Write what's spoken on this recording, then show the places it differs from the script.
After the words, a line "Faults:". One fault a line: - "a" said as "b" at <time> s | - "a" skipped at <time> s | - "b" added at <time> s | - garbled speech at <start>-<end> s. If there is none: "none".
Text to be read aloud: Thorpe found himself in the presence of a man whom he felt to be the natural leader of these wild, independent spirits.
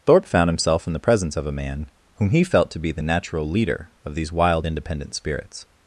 Thorpe found himself in the presence of a man whom he felt to be the natural leader of these wild, independent spirits.
Faults:
none